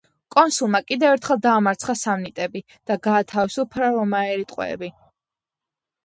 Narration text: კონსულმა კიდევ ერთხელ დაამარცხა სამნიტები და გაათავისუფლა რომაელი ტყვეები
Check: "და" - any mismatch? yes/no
no